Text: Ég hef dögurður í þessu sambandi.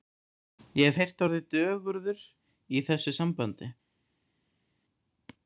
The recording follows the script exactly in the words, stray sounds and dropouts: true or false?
false